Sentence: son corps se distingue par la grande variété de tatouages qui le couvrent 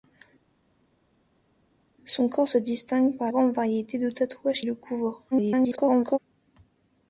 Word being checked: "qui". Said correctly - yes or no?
no